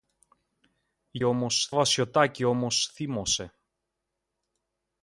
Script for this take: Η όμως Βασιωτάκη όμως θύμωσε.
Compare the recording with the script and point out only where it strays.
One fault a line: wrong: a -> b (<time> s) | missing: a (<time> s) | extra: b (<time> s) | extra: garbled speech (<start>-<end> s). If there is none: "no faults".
no faults